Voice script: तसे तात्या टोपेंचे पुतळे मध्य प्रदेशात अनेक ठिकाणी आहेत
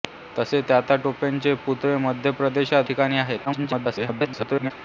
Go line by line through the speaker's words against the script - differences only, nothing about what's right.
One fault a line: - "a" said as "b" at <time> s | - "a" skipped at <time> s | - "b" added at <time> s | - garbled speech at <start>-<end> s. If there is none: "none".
- "अनेक" skipped at 2.9 s
- garbled speech at 3.4-4.7 s